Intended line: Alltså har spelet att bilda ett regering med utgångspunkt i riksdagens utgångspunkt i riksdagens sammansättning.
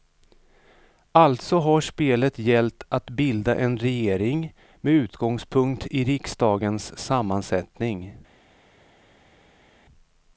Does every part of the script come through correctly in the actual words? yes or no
no